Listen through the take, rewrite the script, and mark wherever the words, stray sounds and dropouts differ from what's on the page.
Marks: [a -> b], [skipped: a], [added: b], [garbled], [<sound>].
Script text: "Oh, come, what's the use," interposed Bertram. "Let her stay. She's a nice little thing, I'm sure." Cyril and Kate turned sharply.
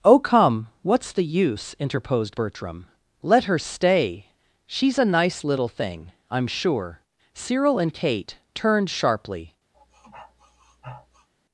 "Oh, come, what's the use," interposed Bertram. "Let her stay. She's a nice little thing, I'm sure." Cyril and Kate turned sharply. [sniff]